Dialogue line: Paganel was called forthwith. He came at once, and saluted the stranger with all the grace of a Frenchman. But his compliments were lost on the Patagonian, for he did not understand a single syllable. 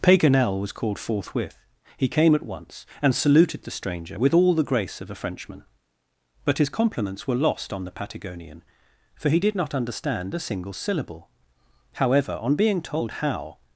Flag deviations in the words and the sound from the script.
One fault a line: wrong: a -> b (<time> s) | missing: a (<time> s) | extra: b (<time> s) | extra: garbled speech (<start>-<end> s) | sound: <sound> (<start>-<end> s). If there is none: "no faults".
extra: However on being told how (11.9 s)